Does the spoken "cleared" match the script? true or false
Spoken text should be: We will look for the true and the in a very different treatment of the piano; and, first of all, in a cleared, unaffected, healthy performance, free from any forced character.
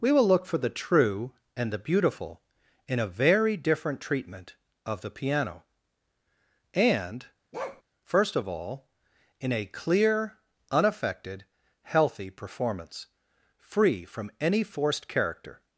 false